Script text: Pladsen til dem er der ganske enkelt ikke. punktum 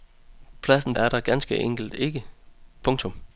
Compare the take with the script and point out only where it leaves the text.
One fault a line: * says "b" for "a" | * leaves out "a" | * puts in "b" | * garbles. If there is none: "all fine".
* leaves out "til dem"